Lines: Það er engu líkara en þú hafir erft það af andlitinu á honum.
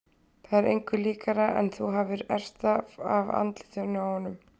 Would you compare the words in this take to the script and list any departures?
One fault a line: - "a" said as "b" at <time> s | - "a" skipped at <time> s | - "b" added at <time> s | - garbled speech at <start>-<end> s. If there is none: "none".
none